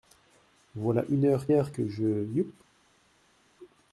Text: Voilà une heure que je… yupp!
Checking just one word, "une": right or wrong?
right